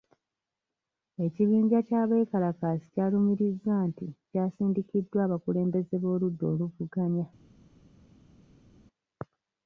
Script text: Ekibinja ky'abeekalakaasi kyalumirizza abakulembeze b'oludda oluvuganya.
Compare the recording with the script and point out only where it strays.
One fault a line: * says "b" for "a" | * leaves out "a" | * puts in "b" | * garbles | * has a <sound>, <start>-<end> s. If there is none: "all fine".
* puts in "nti kyasindikiddwa"